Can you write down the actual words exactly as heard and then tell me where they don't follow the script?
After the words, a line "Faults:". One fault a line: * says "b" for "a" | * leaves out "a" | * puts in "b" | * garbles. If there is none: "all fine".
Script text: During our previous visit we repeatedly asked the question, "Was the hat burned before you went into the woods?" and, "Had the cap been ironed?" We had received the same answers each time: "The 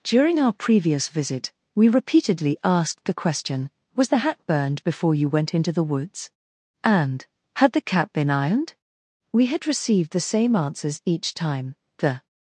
During our previous visit we repeatedly asked the question, "Was the hat burned before you went into the woods?" and, "Had the cap been ironed?" We had received the same answers each time: "The
Faults:
all fine